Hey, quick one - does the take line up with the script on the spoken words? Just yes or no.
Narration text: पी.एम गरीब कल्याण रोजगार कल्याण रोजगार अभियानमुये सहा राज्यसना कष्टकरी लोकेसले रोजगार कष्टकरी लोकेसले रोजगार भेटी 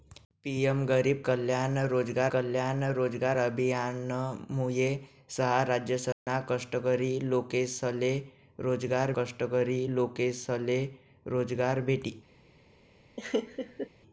yes